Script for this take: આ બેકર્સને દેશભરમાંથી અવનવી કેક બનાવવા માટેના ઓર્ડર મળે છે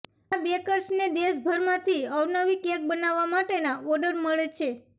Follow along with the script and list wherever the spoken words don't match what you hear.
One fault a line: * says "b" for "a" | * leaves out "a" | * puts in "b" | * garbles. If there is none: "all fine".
all fine